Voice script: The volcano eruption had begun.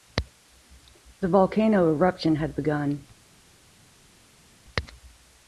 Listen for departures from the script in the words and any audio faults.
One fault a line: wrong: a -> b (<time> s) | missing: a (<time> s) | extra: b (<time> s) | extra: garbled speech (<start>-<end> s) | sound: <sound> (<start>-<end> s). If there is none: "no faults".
no faults